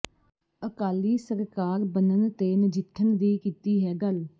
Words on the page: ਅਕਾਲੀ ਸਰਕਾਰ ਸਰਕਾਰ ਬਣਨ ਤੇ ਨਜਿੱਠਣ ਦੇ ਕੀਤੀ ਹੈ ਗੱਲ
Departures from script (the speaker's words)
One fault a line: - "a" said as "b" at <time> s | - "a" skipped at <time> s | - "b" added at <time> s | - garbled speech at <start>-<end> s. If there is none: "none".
- "ਸਰਕਾਰ" skipped at 1.8 s
- "ਦੇ" said as "ਦੀ" at 3.2 s